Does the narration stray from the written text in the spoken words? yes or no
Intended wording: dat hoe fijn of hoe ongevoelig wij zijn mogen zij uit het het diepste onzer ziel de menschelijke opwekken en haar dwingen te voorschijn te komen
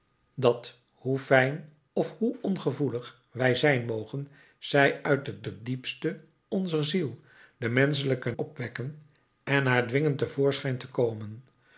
no